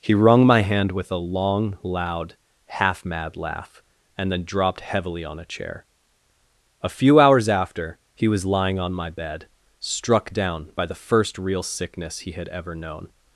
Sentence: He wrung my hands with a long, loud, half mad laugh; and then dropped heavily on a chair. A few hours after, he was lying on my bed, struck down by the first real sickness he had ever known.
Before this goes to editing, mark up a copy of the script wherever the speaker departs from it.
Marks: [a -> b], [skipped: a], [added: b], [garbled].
He wrung my [hands -> hand] with a long, loud, half mad laugh; and then dropped heavily on a chair. A few hours after, he was lying on my bed, struck down by the first real sickness he had ever known.